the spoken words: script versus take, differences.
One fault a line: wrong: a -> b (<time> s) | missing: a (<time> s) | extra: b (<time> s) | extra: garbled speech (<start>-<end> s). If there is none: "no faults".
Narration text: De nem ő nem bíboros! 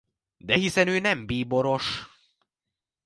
wrong: nem -> hiszen (0.5 s)